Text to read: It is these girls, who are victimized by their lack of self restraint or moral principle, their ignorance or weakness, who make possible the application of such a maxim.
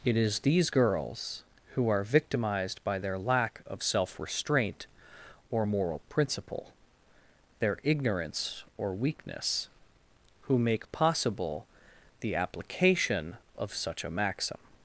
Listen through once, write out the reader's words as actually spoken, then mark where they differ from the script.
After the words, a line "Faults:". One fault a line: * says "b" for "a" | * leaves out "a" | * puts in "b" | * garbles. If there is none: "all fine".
It is these girls, who are victimized by their lack of self restraint or moral principle, their ignorance or weakness, who make possible the application of such a maxim.
Faults:
all fine